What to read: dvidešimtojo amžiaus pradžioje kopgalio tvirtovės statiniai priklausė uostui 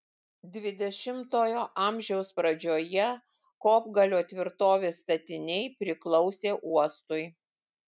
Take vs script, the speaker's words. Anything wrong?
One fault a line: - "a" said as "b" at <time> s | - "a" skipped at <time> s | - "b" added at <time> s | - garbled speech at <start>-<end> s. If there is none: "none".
none